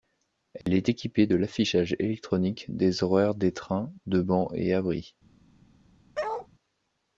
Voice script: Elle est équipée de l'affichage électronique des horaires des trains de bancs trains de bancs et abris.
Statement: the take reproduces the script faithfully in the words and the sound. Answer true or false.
false